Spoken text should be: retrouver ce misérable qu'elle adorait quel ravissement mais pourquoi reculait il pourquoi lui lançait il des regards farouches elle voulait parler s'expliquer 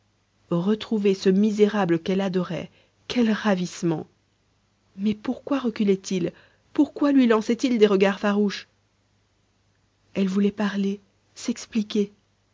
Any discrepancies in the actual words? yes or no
no